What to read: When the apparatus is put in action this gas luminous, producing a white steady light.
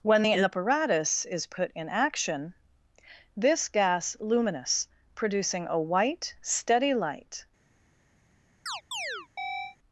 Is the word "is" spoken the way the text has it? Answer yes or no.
yes